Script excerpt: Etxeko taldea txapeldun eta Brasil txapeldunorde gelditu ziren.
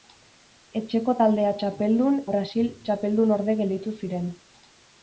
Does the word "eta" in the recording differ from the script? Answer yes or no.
yes